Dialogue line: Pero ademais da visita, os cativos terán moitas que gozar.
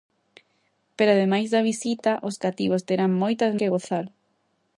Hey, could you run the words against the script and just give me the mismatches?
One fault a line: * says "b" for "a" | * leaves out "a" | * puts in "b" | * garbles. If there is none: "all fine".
all fine